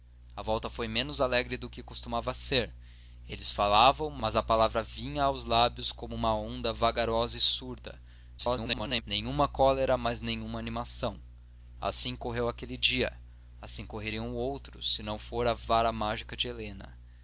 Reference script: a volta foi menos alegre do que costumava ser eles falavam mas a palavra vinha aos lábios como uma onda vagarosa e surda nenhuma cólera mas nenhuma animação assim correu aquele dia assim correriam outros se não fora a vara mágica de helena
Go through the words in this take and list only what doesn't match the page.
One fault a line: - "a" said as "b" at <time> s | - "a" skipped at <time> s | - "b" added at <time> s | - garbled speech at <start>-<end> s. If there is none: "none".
- garbled speech at 8.4-9.0 s